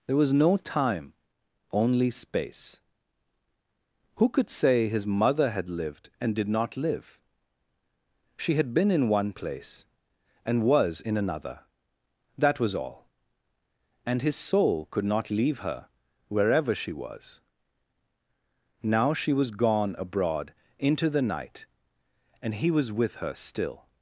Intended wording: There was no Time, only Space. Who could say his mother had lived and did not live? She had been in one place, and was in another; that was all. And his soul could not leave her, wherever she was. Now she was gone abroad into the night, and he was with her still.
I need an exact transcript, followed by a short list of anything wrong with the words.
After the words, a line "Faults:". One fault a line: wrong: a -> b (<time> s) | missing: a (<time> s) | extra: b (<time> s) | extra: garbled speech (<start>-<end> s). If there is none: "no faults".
There was no Time, only Space. Who could say his mother had lived and did not live? She had been in one place, and was in another; that was all. And his soul could not leave her, wherever she was. Now she was gone abroad into the night, and he was with her still.
Faults:
no faults